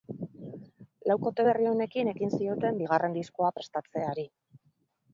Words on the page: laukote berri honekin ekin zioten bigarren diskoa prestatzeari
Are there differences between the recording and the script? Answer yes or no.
no